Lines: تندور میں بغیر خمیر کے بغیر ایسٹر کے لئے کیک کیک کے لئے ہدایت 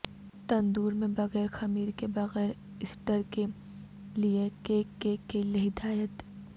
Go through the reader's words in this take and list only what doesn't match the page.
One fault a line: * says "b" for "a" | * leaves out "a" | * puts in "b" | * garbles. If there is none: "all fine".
all fine